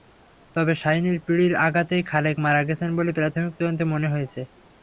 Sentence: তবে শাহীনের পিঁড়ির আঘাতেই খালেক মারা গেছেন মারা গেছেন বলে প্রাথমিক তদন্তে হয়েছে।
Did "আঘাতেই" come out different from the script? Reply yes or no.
no